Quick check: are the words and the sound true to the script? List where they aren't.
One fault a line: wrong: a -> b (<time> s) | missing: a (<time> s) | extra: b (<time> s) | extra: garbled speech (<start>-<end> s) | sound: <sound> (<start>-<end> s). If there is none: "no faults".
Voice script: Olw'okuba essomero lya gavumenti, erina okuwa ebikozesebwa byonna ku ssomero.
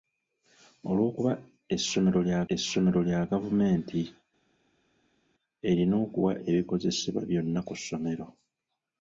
extra: essomero lya (2.5 s)